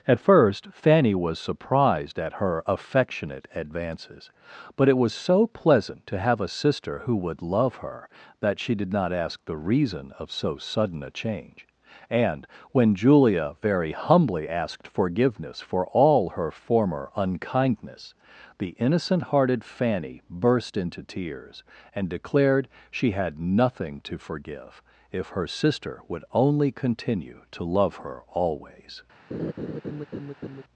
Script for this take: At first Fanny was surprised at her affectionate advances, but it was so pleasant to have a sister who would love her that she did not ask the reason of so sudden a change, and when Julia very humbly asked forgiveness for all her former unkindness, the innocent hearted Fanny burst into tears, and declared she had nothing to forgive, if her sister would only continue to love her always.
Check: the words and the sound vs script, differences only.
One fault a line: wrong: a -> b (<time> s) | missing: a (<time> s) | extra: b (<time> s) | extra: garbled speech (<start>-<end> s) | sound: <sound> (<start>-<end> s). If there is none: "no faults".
sound: laugh (29.3-30.6 s)